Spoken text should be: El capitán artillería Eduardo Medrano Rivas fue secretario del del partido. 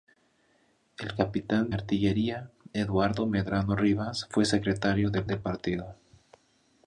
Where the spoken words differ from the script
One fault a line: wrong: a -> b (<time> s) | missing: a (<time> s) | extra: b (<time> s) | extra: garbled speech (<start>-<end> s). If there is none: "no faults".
no faults